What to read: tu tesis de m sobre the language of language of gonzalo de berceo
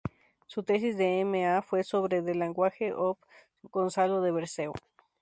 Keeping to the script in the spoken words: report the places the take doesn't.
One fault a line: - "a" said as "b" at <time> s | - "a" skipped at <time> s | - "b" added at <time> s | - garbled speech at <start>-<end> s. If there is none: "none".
- "tu" said as "su" at 0.5 s
- "a fue" added at 1.4 s
- "language of" skipped at 3.2 s